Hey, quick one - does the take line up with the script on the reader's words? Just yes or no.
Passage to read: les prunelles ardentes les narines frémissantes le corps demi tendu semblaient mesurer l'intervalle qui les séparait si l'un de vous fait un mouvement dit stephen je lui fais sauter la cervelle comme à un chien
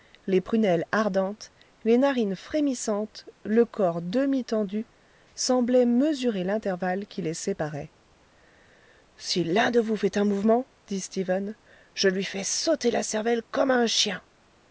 yes